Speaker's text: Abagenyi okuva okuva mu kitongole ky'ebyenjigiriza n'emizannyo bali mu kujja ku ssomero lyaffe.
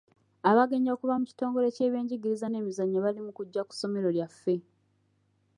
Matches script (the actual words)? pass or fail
fail